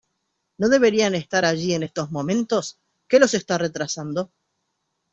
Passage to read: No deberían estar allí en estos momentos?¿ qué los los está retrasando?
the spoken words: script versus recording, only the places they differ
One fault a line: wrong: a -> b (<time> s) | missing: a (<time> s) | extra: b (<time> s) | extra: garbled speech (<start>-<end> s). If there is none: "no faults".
missing: los (3.3 s)